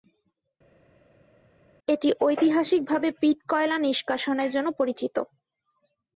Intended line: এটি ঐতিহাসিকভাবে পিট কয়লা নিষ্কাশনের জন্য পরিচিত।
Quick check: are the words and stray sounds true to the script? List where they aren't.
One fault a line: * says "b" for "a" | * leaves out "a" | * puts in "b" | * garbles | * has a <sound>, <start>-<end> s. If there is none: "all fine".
all fine